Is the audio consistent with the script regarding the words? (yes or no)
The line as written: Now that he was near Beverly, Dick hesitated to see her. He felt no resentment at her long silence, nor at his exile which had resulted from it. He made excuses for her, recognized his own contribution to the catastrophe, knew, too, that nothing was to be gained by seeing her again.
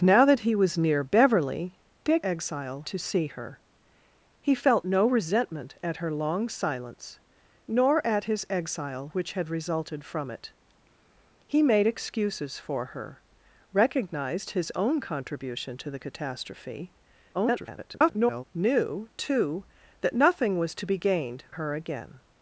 no